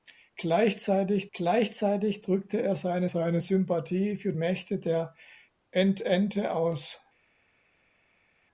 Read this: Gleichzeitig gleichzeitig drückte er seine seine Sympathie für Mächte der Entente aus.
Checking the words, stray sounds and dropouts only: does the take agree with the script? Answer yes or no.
yes